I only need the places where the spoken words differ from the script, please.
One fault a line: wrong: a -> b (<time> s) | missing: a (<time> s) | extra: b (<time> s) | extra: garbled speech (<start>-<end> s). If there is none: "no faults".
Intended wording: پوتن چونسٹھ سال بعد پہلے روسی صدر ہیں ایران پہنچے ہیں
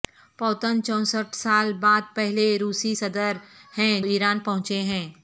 no faults